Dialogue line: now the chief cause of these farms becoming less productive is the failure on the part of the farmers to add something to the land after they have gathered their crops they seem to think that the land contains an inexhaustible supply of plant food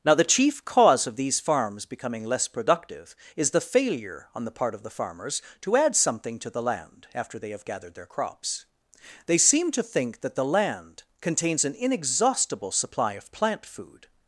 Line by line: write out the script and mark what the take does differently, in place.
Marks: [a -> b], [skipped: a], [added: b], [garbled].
now the chief cause of these farms becoming less productive is the failure on the part of the farmers to add something to the land after they have gathered their crops they seem to think that the land contains an inexhaustible supply of plant food